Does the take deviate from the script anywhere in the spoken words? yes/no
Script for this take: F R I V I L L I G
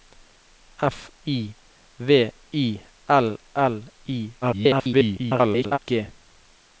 yes